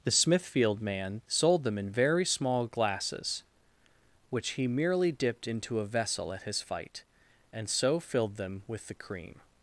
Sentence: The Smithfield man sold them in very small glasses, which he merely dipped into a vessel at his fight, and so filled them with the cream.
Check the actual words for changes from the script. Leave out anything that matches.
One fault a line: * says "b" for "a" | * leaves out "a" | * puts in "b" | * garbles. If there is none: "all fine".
all fine